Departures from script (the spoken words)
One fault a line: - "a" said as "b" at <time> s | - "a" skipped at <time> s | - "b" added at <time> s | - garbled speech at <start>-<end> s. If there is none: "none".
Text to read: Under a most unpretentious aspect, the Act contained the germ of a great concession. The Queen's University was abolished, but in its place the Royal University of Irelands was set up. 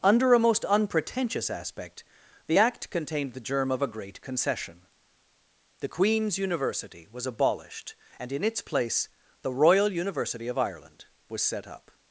- "but" said as "and" at 8.2 s
- "Irelands" said as "Ireland" at 10.6 s